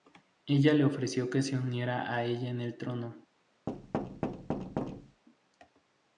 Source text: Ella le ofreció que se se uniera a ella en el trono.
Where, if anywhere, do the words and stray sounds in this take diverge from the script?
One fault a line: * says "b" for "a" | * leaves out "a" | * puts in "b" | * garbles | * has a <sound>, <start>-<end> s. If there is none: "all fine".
* leaves out "se"
* has a thud, 3.7-5.2 s